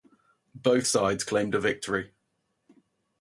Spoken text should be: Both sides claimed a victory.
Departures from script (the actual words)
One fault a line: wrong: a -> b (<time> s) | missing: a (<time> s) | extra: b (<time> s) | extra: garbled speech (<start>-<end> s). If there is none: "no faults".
no faults